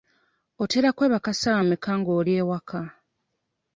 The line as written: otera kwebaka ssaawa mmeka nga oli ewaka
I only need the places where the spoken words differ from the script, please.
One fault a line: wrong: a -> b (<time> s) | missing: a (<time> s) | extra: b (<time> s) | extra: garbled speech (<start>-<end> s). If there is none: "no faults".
no faults